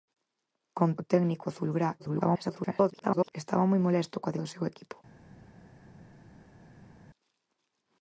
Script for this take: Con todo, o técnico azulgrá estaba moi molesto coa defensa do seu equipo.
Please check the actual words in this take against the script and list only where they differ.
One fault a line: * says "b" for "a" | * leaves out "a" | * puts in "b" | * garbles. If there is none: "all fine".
* leaves out "todo"
* garbles
* leaves out "defensa"